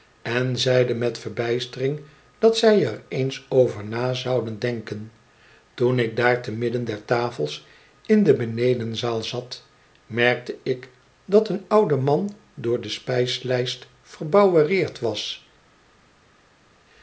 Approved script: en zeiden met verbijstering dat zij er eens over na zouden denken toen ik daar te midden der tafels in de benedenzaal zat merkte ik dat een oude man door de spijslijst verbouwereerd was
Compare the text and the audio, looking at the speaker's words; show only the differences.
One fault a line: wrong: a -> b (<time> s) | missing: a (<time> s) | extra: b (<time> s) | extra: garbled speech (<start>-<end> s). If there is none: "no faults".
no faults